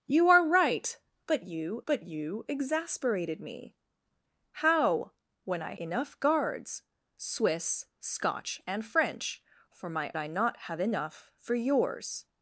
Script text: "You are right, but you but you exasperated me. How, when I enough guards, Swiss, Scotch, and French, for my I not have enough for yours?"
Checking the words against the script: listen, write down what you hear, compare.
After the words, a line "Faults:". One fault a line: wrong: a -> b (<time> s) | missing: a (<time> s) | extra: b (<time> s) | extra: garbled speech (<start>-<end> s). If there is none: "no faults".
"You are right, but you but you exasperated me. How, when I enough guards, Swiss, Scotch, and French, for my I not have enough for yours?"
Faults:
no faults